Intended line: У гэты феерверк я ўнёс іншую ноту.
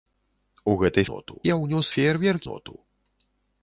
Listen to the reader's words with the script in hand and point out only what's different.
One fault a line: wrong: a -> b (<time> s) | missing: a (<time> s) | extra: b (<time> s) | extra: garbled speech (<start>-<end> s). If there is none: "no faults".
wrong: феерверк -> ноту (1.1 s)
wrong: іншую -> феерверк (1.9 s)